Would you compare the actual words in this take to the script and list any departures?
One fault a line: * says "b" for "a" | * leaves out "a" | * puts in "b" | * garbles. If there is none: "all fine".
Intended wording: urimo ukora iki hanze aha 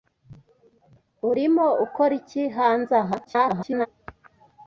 * garbles